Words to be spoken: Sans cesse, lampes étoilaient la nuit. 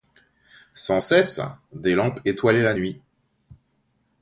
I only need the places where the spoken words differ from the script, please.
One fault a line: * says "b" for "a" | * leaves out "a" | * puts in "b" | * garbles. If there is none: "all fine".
* puts in "des"